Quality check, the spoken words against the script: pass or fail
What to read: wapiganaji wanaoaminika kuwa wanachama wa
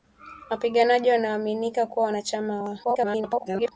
fail